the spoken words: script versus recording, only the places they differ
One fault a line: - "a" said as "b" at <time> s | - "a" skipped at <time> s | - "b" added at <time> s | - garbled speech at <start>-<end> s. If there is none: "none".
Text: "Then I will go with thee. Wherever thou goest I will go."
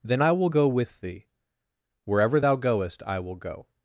none